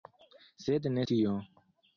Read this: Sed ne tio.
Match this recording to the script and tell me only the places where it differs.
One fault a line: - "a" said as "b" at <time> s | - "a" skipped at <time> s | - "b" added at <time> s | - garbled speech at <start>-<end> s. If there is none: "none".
none